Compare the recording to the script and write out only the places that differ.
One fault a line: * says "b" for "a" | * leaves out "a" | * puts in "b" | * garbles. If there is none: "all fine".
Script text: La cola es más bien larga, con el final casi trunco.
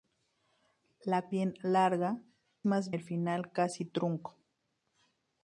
* leaves out "cola es más"
* says "más" for "con"